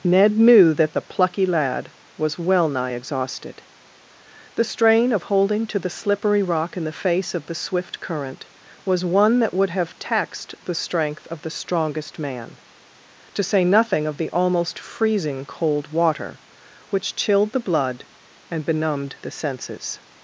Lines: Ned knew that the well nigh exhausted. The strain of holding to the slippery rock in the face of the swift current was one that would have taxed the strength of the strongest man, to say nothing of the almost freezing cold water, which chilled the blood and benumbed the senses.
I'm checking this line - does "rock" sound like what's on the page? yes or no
yes